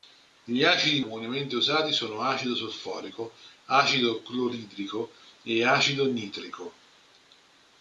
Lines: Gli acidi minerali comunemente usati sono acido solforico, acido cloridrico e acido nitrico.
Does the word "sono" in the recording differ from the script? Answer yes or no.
no